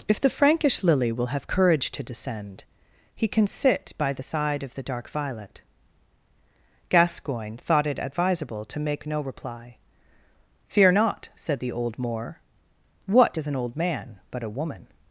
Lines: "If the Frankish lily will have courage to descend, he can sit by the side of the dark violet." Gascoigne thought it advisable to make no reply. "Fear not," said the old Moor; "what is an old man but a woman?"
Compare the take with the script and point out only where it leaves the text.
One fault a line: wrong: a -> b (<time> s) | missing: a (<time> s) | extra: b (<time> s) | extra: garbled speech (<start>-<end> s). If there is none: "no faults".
no faults